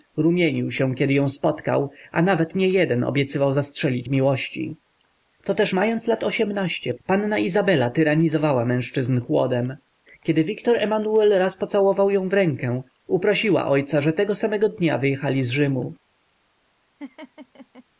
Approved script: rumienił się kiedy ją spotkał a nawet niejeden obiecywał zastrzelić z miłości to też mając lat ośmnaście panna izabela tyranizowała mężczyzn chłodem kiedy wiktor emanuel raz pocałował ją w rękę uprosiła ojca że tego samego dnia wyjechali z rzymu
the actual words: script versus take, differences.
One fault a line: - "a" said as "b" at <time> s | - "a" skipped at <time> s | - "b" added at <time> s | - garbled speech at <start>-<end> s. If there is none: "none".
none